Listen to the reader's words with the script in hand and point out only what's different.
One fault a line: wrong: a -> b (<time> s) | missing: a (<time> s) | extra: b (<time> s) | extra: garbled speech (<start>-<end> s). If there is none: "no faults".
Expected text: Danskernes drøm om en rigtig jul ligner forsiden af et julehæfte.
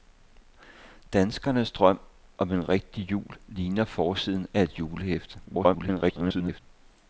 extra: garbled speech (5.4-6.6 s)